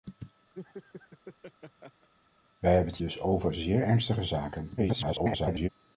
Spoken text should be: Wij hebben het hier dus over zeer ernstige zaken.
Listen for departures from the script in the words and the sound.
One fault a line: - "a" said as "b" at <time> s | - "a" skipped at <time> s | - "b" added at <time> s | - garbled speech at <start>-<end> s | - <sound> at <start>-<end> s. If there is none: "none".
- laugh at 0.5-2.1 s
- "hier" skipped at 3.0 s
- garbled speech at 4.8-5.7 s